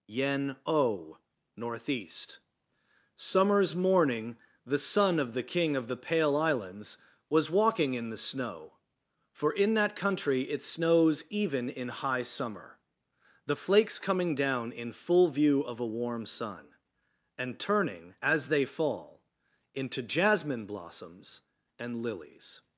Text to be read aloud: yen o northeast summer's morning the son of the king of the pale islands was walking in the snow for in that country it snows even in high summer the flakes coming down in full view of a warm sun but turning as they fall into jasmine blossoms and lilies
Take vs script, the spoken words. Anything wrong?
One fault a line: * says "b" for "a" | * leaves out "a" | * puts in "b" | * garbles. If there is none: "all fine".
* says "and" for "but"